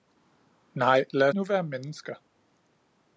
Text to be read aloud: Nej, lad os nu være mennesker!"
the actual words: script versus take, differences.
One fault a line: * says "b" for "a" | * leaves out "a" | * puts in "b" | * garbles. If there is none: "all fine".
* leaves out "os"